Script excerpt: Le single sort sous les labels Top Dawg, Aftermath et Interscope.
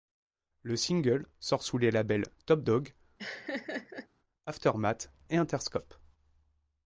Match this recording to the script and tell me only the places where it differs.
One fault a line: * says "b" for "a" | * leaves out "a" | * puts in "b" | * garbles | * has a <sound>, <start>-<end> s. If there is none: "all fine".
* has a laugh, 3.2-4.1 s